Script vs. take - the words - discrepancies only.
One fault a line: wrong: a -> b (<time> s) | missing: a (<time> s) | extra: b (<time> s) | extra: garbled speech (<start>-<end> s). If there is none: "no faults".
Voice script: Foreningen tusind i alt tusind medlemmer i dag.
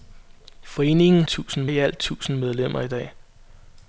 no faults